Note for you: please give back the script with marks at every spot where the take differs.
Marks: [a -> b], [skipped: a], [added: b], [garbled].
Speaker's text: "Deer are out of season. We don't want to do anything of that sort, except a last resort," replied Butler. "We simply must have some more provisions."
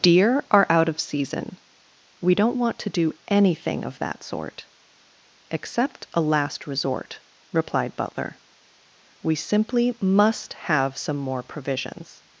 "Deer are out of season. We don't want to do anything of that sort, except a last resort," replied Butler. "We simply must have some more provisions."